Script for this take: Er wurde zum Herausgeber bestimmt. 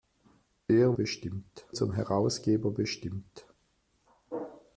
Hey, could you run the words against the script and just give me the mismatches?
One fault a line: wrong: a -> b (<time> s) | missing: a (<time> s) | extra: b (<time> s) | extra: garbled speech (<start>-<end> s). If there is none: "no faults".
wrong: wurde -> bestimmt (0.9 s)